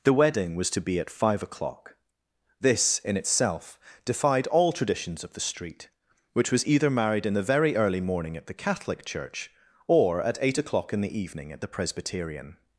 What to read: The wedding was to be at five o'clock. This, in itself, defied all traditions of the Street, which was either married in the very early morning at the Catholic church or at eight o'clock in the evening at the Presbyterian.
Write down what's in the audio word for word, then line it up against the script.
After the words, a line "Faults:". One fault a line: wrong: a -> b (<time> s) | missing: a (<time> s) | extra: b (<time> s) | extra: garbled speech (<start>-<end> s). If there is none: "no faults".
The wedding was to be at five o'clock. This, in itself, defied all traditions of the Street, which was either married in the very early morning at the Catholic church or at eight o'clock in the evening at the Presbyterian.
Faults:
no faults